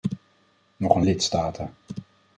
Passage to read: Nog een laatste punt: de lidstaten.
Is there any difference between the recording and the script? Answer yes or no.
yes